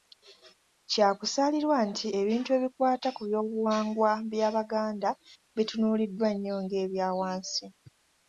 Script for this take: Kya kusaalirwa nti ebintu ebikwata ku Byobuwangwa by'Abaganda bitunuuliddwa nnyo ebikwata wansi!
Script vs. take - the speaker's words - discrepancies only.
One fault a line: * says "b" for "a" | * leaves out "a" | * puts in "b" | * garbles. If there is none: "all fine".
* says "ng'ebya" for "ebikwata"